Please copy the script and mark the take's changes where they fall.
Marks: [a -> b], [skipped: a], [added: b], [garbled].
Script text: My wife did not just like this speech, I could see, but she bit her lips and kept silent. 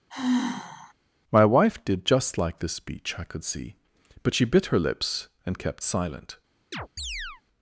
My wife did [skipped: not] just like this speech, I could see, but she bit her lips and kept silent.